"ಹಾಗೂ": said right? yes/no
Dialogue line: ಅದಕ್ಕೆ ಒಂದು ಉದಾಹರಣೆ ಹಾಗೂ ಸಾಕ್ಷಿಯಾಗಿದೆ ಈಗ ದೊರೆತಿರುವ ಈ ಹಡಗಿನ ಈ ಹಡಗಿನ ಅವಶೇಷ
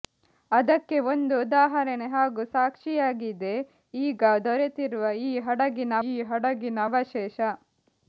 yes